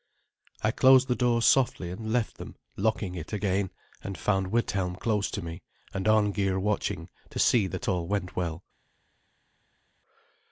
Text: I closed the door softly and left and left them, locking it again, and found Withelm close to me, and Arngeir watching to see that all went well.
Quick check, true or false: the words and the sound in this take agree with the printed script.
false